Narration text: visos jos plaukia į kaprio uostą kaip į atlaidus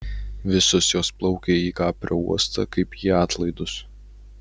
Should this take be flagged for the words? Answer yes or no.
no